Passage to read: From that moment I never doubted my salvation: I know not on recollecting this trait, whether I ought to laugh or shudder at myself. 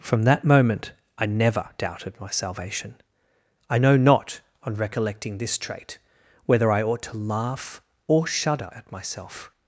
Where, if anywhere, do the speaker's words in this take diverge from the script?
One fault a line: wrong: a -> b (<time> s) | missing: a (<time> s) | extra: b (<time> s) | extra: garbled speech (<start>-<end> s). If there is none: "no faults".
no faults